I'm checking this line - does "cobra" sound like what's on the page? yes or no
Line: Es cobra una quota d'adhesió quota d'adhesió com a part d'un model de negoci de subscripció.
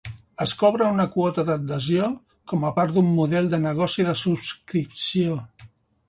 yes